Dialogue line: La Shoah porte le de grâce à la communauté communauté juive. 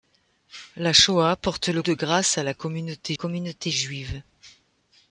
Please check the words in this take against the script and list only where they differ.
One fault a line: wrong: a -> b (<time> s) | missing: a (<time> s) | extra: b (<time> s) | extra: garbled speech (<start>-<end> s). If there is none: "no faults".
no faults